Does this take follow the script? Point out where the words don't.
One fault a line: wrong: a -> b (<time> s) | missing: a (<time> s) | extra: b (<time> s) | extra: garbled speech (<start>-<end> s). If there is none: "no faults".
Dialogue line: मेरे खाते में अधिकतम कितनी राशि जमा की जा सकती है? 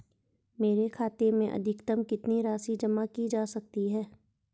no faults